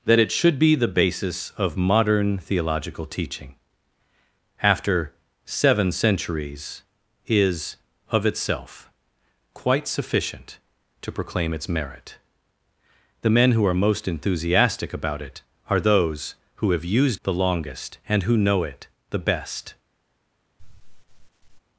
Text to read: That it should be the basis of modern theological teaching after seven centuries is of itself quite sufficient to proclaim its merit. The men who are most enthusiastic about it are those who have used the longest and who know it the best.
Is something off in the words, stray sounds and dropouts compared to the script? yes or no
yes